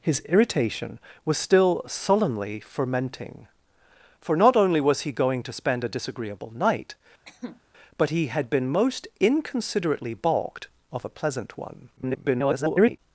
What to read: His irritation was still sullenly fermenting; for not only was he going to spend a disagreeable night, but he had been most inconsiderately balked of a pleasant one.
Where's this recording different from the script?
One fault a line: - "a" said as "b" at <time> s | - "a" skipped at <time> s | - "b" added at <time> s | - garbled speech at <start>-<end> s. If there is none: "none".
- garbled speech at 12.0-13.0 s